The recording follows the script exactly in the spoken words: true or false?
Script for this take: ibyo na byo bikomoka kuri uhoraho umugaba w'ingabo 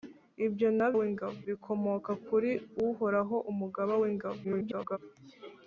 false